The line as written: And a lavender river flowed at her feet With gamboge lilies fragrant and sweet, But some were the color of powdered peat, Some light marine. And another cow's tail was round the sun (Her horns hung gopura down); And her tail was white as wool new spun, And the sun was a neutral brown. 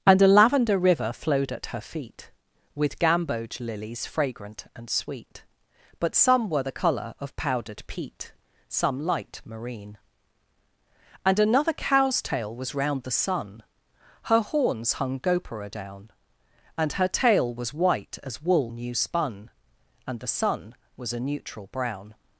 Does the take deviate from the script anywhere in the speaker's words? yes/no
no